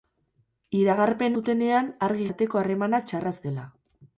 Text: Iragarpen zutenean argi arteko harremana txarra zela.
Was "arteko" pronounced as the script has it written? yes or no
yes